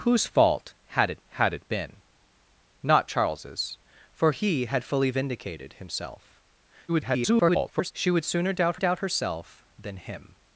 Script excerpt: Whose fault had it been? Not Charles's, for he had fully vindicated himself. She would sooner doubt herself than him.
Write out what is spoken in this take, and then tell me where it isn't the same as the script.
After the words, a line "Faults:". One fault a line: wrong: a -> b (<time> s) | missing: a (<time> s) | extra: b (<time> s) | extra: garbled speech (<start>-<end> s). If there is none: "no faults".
Whose fault had it had it been? Not Charles's, for he had fully vindicated himself. [garbled] She would sooner doubt doubt herself than him.
Faults:
extra: had it (1.3 s)
extra: garbled speech (6.9-7.9 s)
extra: doubt (8.7 s)